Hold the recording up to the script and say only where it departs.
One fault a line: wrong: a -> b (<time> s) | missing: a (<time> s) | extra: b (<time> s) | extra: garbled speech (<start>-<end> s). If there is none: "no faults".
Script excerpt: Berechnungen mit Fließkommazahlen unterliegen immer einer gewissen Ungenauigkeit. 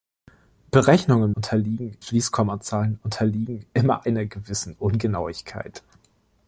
wrong: mit -> unterliegen (1.3 s)